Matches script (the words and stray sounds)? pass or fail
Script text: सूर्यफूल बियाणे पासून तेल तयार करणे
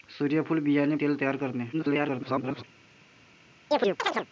fail